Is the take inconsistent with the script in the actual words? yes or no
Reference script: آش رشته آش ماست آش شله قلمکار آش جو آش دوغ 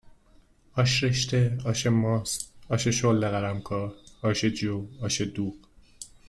no